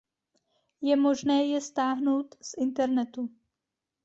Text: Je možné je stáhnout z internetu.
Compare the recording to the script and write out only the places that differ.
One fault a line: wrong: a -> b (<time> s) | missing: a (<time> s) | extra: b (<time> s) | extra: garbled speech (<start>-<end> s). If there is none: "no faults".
no faults